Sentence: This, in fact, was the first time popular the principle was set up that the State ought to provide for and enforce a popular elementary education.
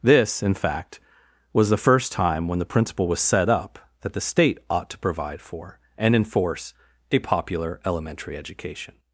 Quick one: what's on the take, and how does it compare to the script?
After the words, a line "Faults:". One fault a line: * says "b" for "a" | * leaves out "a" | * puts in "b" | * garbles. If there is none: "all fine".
This, in fact, was the first time when the principle was set up that the State ought to provide for and enforce a popular elementary education.
Faults:
* says "when" for "popular"